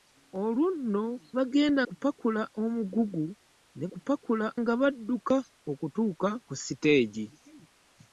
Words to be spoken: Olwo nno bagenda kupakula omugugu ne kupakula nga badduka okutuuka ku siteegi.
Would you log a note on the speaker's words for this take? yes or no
no